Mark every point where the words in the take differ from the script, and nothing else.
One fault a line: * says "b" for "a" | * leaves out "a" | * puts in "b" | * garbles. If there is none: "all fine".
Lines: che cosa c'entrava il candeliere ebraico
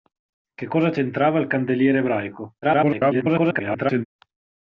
* garbles